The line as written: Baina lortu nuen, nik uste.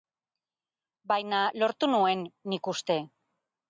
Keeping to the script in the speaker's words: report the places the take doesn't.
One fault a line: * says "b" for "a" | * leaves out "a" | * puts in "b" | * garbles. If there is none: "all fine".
all fine